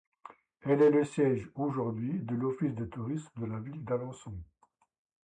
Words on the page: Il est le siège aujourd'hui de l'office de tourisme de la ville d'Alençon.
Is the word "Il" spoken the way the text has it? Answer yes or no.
no